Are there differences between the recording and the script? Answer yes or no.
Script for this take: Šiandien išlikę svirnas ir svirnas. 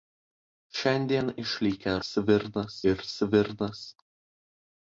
no